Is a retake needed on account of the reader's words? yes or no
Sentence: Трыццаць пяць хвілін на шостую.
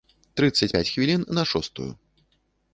no